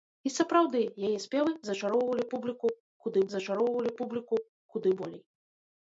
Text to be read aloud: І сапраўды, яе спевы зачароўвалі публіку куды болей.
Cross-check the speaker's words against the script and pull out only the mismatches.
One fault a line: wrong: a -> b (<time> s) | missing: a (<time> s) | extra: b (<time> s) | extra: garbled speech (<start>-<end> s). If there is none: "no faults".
extra: зачароўвалі публіку куды (3.3 s)